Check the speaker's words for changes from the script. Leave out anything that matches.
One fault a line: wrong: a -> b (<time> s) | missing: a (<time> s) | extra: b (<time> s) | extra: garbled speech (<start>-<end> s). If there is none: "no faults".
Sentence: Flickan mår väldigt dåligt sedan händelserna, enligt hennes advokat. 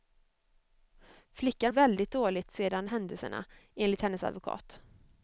missing: mår (1.7 s)